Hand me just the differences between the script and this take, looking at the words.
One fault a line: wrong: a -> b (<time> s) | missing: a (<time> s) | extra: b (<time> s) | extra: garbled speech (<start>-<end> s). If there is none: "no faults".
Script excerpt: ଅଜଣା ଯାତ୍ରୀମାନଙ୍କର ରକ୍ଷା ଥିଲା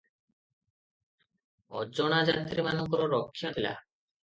no faults